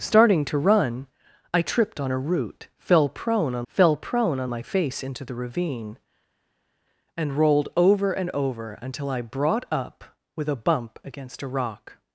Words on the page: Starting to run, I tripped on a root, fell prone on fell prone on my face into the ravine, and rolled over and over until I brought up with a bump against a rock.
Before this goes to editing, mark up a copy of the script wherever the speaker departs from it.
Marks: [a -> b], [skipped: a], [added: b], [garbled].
Starting to run, I tripped on a root, fell prone on fell prone on my face into the ravine, and rolled over and over until I brought up with a bump against a rock.